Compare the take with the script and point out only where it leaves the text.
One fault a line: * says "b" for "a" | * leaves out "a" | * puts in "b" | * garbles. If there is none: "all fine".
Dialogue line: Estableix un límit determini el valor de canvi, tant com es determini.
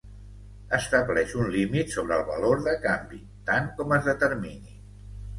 * says "sobre" for "determini"